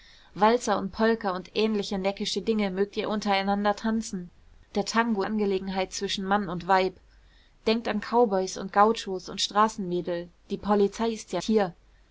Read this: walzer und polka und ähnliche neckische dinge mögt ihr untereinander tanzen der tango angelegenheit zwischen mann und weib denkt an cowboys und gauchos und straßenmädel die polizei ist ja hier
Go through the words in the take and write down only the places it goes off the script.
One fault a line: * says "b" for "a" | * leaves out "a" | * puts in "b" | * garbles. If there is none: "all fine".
all fine